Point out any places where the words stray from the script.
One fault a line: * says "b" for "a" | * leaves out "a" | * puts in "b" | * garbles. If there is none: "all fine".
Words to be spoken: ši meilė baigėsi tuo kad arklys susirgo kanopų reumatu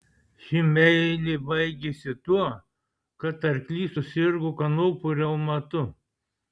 all fine